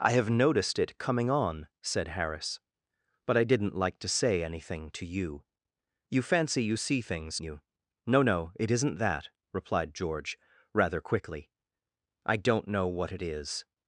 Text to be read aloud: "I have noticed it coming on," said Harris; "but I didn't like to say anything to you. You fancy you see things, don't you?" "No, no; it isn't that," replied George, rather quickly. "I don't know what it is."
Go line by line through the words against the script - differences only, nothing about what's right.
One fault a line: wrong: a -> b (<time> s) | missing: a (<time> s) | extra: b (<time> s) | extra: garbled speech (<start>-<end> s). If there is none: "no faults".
missing: don't (7.4 s)